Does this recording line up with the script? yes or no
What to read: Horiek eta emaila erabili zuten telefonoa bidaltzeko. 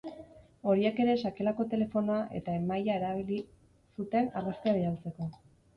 no